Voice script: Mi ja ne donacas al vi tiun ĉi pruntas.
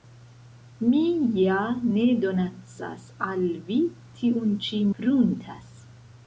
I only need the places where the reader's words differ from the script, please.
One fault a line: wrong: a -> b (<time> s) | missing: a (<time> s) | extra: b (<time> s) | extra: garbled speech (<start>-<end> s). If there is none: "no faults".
no faults